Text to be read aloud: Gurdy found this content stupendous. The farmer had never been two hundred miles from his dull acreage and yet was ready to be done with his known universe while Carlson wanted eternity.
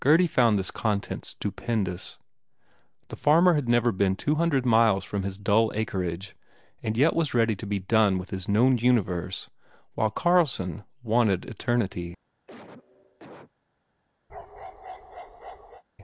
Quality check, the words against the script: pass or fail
pass